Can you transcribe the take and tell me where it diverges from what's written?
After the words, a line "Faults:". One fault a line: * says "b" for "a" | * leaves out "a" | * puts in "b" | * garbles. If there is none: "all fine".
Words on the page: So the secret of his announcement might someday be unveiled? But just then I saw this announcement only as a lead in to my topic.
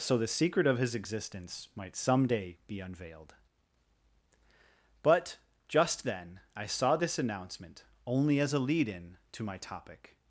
So the secret of his existence might someday be unveiled? But just then I saw this announcement only as a lead in to my topic.
Faults:
* says "existence" for "announcement"